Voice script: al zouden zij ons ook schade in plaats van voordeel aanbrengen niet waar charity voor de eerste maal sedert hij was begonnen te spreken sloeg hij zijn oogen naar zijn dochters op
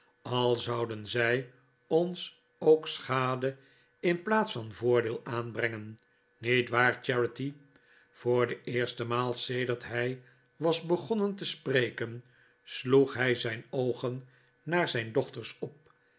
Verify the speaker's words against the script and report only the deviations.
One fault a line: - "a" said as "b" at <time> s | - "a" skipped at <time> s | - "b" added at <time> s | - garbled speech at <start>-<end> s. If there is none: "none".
none